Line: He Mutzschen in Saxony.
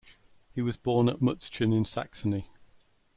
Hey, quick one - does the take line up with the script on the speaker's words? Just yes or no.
no